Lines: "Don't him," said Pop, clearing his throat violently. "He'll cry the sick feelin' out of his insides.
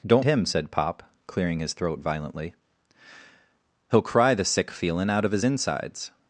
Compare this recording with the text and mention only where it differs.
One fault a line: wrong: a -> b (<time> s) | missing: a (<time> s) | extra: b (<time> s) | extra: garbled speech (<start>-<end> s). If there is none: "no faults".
no faults